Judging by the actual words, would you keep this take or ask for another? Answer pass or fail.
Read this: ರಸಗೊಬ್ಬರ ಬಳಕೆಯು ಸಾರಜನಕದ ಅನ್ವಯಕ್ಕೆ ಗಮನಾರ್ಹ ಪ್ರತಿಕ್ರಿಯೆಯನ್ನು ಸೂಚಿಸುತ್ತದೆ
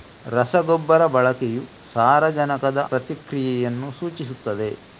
fail